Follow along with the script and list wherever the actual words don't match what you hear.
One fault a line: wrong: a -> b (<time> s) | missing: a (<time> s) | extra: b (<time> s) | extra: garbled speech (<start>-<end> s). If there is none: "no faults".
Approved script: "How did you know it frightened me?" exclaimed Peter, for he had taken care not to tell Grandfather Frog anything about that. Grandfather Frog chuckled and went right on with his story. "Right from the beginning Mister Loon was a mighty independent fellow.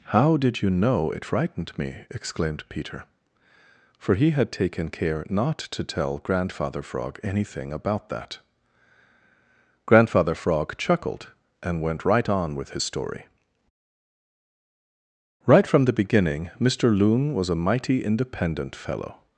no faults